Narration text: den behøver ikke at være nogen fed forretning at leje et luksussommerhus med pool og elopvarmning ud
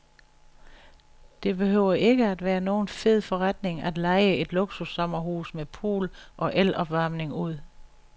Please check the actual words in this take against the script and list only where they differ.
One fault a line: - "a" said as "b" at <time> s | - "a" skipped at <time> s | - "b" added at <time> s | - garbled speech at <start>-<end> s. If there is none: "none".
- "den" said as "det" at 1.4 s